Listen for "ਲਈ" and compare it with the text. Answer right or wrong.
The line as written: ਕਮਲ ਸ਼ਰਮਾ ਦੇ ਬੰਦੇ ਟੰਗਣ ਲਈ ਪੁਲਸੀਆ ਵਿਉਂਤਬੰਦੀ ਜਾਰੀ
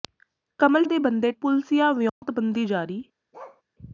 wrong